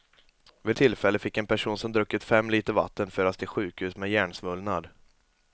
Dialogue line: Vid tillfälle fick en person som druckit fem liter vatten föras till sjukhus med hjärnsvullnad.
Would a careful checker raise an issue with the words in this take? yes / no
no